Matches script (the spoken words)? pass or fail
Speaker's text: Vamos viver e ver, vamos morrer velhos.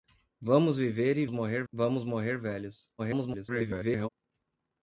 fail